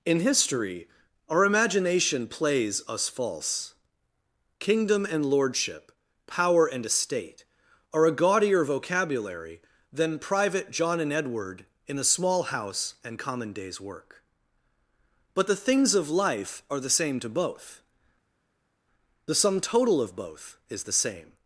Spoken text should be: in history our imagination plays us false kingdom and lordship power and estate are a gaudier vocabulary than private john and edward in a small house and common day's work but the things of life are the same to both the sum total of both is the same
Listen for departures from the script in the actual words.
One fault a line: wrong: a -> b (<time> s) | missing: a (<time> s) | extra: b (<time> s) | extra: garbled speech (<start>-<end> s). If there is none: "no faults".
no faults